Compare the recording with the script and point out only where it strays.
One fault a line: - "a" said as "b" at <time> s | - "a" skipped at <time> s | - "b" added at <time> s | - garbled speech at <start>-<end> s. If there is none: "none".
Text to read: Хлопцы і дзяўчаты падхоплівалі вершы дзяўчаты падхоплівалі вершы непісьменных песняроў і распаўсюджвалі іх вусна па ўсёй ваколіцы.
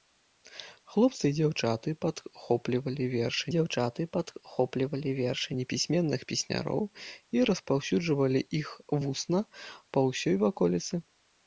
none